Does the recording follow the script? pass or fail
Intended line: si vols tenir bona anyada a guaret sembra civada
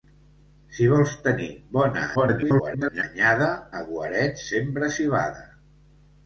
fail